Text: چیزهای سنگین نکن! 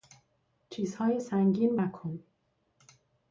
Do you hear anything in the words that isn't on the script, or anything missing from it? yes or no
no